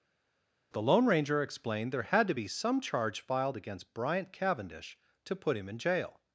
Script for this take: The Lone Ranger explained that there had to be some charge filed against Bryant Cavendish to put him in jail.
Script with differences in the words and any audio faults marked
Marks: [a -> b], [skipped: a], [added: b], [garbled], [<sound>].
The Lone Ranger explained [skipped: that] there had to be some charge filed against Bryant Cavendish to put him in jail.